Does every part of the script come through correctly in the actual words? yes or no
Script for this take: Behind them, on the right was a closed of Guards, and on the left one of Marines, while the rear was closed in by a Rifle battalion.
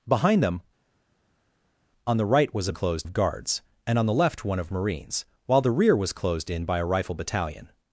yes